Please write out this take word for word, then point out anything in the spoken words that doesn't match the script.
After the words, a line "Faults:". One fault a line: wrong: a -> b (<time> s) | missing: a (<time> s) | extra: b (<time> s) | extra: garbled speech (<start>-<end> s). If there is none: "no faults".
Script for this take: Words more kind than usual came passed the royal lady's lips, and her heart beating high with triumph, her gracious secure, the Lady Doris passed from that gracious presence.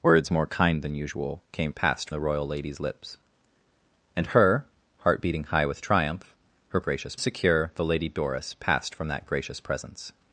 Words more kind than usual came passed the royal lady's lips, and her heart beating high with triumph, her gracious secure, the Lady Doris passed from that gracious presence.
Faults:
no faults